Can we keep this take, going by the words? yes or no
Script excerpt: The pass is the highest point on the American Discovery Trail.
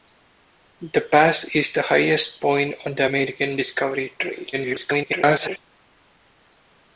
no